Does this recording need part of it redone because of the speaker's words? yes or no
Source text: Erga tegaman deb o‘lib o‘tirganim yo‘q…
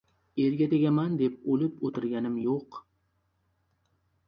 no